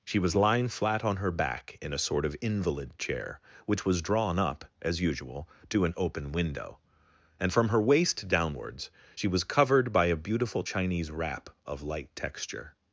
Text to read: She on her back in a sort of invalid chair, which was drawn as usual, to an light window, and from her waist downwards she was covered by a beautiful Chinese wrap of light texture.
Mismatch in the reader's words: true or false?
true